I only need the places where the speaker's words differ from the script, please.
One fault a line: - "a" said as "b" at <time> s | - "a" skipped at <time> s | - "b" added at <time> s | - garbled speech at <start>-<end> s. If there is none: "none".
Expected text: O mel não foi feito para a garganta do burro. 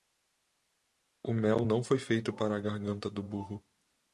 none